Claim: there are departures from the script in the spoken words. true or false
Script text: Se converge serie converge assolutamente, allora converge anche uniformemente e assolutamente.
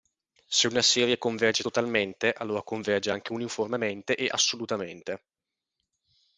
true